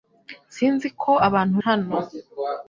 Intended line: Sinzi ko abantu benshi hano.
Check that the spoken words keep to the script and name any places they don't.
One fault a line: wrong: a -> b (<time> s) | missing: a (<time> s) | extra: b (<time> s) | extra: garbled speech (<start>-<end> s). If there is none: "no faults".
missing: benshi (1.6 s)